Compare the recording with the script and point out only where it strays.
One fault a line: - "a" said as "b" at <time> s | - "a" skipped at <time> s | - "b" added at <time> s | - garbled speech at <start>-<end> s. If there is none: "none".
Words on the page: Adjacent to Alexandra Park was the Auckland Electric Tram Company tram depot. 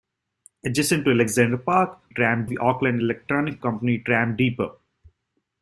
- "was" said as "tram" at 2.1 s
- "Tram" skipped at 3.6 s